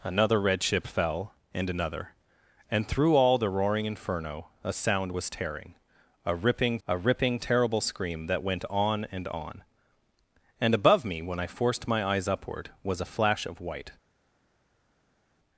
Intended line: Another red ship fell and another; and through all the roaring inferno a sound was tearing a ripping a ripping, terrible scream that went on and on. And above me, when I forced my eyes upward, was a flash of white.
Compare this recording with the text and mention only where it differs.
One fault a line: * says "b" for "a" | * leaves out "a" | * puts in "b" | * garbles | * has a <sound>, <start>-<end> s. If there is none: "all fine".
all fine